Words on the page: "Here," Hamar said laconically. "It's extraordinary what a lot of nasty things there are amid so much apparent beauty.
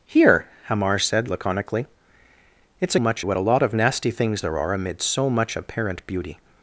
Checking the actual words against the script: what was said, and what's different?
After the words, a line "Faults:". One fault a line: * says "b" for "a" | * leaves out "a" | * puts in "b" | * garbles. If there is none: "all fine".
"Here," Hamar said laconically. "It's much what a lot of nasty things there are amid so much apparent beauty.
Faults:
* says "much" for "extraordinary"